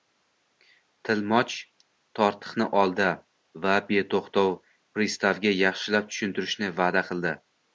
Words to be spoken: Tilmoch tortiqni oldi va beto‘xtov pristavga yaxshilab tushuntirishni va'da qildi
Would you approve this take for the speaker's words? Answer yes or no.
yes